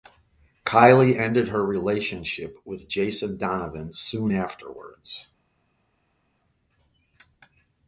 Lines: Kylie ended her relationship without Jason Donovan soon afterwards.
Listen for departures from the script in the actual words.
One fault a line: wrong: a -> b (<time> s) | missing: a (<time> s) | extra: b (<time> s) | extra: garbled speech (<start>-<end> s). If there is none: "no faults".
wrong: without -> with (2.6 s)